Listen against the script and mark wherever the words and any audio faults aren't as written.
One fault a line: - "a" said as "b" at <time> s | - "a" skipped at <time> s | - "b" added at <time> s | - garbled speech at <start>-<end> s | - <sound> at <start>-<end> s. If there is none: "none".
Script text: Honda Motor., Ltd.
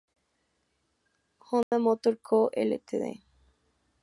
- dropout at 1.6-1.7 s
- "Co" added at 2.2 s